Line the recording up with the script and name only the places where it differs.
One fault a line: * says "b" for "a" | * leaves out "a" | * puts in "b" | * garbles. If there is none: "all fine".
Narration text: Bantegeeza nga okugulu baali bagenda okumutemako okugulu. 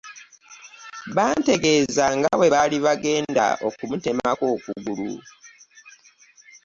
* says "bwe" for "okugulu"